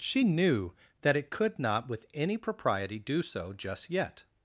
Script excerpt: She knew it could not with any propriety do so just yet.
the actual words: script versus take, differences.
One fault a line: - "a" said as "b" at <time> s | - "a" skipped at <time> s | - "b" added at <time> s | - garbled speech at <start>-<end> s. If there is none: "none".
- "that" added at 1.0 s